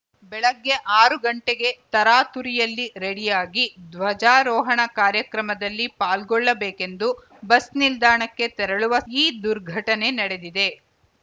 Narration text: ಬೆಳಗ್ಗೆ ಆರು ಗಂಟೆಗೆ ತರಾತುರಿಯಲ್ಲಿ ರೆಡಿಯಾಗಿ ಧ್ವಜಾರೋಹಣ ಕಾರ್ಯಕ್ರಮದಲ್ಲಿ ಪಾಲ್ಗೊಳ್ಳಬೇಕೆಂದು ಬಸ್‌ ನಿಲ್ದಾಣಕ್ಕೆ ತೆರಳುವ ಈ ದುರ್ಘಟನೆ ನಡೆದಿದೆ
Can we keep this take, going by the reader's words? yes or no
yes